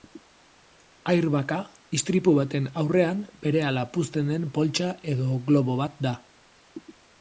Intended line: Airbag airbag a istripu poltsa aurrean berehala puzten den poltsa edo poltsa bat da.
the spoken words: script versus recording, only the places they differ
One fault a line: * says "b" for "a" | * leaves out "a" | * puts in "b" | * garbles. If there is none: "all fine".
* leaves out "airbag"
* says "baten" for "poltsa"
* says "globo" for "poltsa"